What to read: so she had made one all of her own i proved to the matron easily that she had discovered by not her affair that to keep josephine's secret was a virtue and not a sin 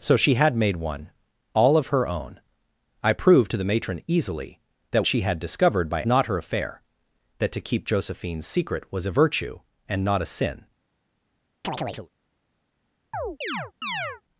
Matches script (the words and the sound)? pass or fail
fail